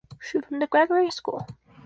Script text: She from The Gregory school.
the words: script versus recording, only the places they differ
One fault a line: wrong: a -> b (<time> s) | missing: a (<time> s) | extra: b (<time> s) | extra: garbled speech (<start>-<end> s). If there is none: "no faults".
no faults